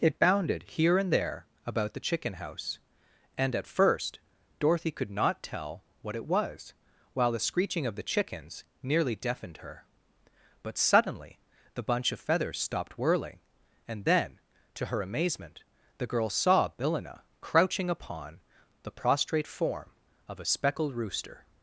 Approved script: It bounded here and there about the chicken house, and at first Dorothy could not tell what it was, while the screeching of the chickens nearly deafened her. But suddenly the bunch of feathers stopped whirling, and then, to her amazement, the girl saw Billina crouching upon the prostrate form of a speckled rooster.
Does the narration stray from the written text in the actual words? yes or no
no